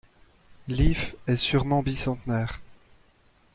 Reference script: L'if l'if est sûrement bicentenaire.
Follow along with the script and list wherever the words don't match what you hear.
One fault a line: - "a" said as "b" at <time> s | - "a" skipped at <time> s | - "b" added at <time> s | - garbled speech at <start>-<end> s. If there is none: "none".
- "l'if" skipped at 1.1 s